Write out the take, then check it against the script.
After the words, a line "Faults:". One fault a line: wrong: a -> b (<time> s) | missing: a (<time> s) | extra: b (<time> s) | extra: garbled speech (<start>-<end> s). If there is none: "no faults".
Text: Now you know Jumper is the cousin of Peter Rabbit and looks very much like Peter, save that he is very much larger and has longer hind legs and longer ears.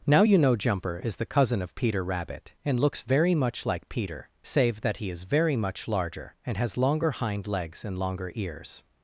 Now you know Jumper is the cousin of Peter Rabbit and looks very much like Peter, save that he is very much larger and has longer hind legs and longer ears.
Faults:
no faults